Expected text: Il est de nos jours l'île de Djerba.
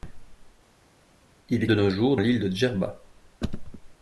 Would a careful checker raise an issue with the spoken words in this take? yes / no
no